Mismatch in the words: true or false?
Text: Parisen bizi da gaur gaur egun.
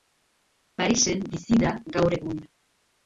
true